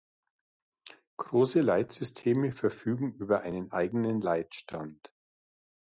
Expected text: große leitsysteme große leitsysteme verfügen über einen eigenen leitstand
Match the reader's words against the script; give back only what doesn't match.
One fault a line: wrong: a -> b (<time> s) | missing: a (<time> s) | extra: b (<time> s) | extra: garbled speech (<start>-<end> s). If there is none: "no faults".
missing: große leitsysteme (2.5 s)